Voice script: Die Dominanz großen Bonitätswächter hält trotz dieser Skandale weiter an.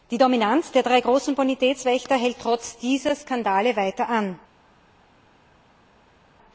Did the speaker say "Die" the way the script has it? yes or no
yes